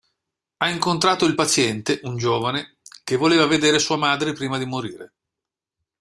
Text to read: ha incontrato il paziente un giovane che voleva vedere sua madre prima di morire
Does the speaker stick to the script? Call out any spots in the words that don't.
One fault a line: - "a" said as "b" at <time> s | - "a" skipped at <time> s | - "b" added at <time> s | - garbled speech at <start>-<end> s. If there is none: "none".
none